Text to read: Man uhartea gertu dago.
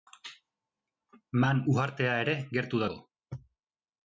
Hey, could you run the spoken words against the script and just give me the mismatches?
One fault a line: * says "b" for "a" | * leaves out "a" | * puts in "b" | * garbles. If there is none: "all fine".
* puts in "ere"